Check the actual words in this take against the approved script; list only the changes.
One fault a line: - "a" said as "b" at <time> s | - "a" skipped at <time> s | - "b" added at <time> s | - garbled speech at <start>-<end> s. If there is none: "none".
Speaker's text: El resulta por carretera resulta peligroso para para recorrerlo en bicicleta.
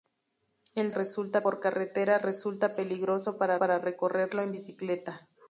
none